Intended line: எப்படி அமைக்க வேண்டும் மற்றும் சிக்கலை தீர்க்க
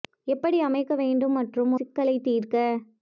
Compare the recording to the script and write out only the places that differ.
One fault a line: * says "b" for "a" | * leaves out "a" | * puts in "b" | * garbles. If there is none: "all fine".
all fine